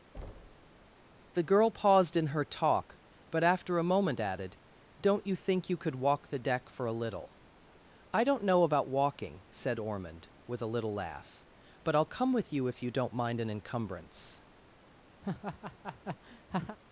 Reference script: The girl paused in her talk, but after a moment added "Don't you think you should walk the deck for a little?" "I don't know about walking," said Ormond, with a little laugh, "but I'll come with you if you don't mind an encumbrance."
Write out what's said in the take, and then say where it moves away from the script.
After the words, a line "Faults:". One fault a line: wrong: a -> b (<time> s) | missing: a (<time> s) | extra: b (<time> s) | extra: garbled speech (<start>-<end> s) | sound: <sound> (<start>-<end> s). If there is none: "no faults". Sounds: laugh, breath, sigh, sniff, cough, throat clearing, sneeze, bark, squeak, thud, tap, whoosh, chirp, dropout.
The girl paused in her talk, but after a moment added "Don't you think you could walk the deck for a little?" "I don't know about walking," said Ormond, with a little laugh, "but I'll come with you if you don't mind an encumbrance."
Faults:
sound: thud (0.1-0.9 s)
wrong: should -> could (5.8 s)
sound: laugh (15.2-16.8 s)